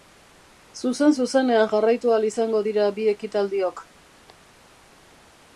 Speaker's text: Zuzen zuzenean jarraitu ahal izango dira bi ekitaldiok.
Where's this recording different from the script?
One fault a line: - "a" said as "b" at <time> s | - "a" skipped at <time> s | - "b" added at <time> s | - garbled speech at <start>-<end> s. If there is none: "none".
none